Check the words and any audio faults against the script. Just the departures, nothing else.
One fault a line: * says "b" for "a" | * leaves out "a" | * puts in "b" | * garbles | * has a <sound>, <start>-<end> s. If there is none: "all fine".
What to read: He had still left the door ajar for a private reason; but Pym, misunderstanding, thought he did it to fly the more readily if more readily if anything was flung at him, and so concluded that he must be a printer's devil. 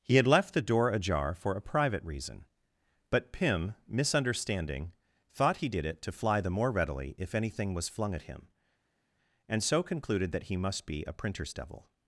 * leaves out "still"
* leaves out "more readily if"